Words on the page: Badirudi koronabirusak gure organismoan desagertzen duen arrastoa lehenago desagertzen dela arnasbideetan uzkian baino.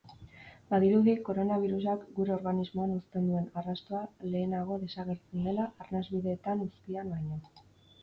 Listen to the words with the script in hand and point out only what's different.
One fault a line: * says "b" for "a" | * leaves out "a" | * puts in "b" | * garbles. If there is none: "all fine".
* says "uzten" for "desagertzen"